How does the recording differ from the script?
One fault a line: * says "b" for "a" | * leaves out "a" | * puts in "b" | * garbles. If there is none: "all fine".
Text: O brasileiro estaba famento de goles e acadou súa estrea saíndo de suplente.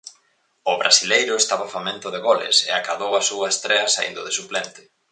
* puts in "a"